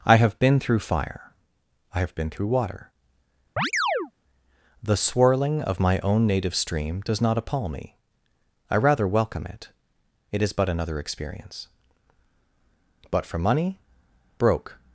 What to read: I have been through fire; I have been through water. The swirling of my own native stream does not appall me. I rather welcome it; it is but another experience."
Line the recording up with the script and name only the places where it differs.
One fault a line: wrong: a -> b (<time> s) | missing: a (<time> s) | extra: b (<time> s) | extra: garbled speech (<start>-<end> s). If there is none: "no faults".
extra: But for money broke (13.1 s)